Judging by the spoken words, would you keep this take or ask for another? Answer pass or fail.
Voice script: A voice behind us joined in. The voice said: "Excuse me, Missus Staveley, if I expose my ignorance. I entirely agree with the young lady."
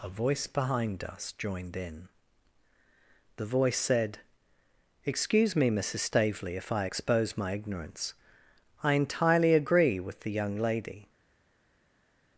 pass